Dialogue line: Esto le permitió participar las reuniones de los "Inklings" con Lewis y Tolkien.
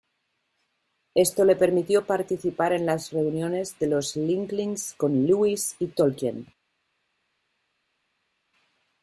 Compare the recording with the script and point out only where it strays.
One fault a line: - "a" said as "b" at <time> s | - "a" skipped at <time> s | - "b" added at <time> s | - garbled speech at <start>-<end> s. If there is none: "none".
- "en" added at 2.7 s